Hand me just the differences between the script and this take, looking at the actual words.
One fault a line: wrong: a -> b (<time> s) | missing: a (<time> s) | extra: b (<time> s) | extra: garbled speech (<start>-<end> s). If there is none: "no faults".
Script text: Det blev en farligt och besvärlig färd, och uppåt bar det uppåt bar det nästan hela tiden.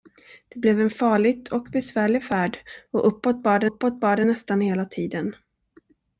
no faults